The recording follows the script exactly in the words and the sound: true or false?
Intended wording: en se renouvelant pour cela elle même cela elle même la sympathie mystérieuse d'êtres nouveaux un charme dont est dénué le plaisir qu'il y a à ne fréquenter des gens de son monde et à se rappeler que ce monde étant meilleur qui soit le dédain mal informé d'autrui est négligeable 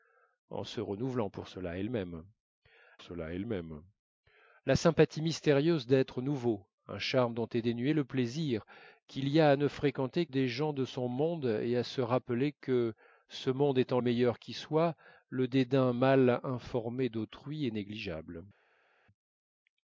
true